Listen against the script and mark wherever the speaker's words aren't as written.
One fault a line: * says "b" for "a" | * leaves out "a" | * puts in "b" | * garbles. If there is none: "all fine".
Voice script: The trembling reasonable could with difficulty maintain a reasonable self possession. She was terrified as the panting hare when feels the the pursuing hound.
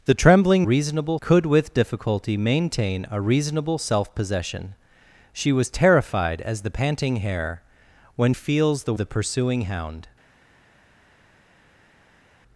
all fine